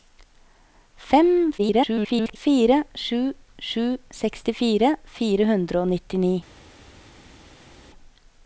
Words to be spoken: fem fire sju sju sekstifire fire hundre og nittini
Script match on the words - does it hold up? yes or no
no